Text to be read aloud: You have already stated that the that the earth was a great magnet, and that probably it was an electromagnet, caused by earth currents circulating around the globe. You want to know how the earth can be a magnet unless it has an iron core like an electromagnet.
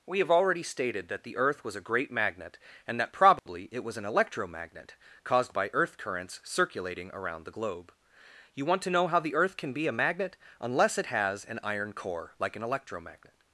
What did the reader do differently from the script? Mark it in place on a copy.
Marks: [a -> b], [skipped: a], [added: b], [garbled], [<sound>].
[You -> We] have already stated that the [skipped: that the] earth was a great magnet, and that probably [dropout] it was an electromagnet, caused by earth currents circulating around the globe. You want to know how the earth can be a magnet unless it has an iron core like an electromagnet.